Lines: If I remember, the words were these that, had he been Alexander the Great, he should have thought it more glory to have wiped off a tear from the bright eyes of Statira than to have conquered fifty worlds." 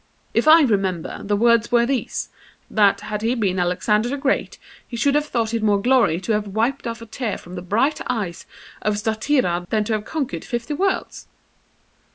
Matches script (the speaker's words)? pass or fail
pass